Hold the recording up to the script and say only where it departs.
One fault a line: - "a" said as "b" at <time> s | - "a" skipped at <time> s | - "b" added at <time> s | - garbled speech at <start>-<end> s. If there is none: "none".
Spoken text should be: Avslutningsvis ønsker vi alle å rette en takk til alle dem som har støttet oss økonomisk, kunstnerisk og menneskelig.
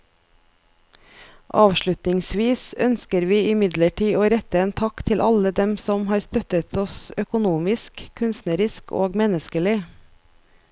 - "alle" said as "imidlertid" at 3.5 s